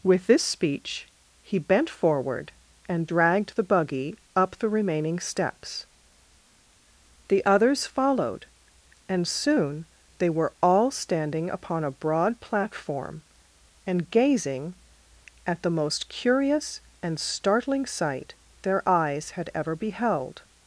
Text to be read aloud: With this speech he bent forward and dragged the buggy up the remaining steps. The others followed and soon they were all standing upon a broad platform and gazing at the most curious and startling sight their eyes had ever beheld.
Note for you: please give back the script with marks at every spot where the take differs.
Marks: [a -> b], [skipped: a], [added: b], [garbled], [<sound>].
With this speech he bent forward and dragged the buggy up the remaining steps. The others followed and soon they were all standing upon a broad platform and gazing at the most curious and startling sight their eyes had ever beheld.